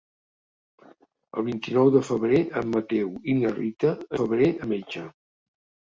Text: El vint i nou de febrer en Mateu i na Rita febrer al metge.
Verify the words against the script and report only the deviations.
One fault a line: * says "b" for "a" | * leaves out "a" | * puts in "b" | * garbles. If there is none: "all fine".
all fine